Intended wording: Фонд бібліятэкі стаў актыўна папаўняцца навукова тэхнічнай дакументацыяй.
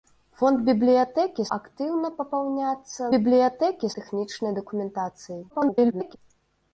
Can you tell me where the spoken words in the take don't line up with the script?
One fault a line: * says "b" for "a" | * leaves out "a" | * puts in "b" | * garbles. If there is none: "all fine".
* leaves out "стаў"
* says "бібліятэкі" for "навукова"
* garbles